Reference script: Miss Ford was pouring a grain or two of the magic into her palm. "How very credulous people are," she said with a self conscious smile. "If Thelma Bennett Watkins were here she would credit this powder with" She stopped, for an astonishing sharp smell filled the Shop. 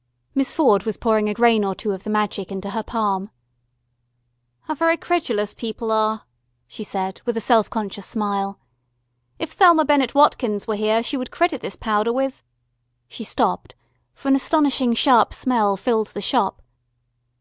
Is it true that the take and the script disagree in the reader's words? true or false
false